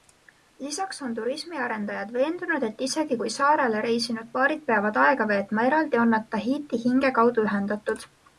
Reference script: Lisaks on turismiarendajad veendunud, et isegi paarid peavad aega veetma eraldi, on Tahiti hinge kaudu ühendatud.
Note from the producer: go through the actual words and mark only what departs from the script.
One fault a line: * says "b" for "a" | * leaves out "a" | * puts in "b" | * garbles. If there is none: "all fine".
* puts in "kui saarele reisinud"
* puts in "nad"